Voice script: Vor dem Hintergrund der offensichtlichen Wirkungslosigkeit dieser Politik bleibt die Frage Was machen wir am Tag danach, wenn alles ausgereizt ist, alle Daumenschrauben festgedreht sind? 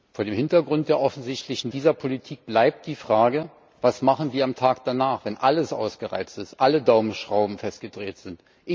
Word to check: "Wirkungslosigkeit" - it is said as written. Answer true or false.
false